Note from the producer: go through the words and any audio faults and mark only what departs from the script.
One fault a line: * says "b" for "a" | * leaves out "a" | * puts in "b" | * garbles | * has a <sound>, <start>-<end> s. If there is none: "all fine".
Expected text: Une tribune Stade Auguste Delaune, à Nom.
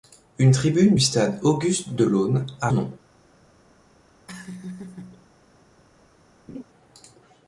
* has a laugh, 4.3-5.3 s
* has a laugh, 6.5-6.6 s